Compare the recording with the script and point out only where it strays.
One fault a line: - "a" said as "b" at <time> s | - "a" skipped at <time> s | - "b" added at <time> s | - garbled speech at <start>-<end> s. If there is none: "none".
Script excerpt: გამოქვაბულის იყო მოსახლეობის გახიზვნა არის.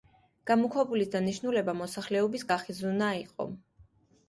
- "იყო" said as "დანიშნულება" at 1.2 s
- "არის" said as "იყო" at 3.3 s